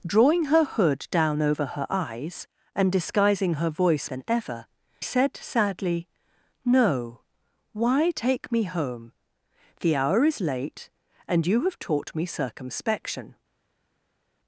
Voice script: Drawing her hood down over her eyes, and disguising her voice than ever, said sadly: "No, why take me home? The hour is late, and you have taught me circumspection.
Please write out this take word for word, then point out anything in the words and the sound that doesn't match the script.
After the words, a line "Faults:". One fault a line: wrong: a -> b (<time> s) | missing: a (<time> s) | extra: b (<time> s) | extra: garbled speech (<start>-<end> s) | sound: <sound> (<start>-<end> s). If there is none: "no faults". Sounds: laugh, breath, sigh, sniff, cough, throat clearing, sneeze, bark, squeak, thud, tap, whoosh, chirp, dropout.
Drawing her hood down over her eyes, and disguising her voice than ever, said sadly: "No, why take me home? The hour is late, and you have taught me circumspection.
Faults:
no faults